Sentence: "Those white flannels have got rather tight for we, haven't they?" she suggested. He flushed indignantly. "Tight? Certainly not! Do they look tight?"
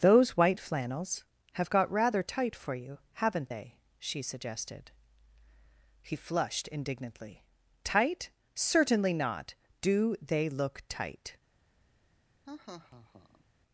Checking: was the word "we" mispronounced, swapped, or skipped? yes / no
yes